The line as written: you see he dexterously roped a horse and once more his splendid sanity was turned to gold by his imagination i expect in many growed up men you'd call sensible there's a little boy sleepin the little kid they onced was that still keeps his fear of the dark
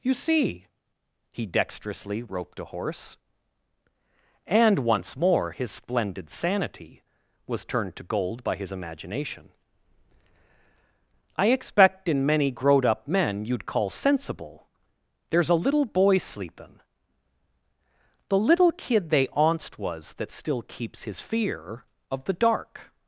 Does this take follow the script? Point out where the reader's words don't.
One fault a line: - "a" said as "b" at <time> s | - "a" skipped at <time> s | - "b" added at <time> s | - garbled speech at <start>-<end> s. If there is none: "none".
none